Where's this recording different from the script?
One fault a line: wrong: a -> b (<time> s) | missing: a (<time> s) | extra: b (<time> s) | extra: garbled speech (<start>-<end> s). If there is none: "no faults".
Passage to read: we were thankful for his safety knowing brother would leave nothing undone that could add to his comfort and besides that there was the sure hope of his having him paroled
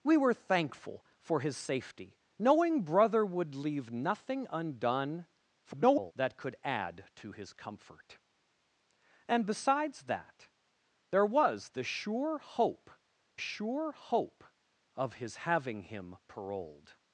extra: garbled speech (5.6-6.1 s)
extra: sure hope (13.4 s)